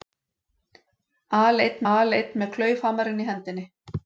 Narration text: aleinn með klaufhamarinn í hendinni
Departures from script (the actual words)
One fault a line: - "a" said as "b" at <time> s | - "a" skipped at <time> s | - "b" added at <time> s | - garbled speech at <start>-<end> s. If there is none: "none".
- "aleinn" added at 1.9 s